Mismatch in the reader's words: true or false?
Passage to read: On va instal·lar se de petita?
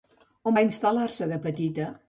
false